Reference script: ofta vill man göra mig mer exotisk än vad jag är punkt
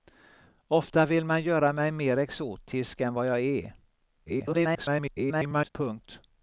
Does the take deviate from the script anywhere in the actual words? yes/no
yes